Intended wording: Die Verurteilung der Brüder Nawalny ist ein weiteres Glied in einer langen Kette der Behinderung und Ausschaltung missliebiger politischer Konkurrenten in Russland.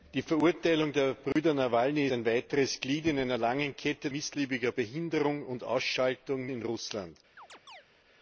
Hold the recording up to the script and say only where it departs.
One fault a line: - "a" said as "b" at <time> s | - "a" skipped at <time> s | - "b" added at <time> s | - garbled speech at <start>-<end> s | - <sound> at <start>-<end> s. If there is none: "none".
- dropout at 1.3-1.4 s
- "ist" skipped at 2.1 s
- "der" said as "missliebiger" at 4.1 s
- "missliebiger politischer Konkurrenten" skipped at 6.5 s
- chirp at 7.4-7.8 s